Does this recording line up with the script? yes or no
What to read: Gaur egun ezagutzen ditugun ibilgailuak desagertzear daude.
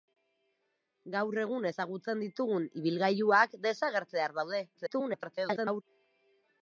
no